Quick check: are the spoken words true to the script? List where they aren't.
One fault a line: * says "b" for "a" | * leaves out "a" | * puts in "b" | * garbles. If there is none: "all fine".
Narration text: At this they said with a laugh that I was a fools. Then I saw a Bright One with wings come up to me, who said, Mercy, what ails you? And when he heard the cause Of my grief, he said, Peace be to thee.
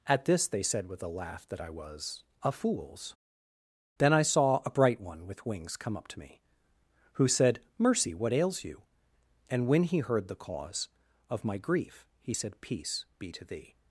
all fine